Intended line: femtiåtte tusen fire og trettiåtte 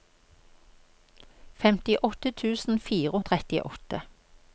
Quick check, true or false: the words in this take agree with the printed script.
true